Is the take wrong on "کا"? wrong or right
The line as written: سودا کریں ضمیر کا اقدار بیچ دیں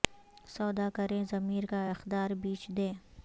right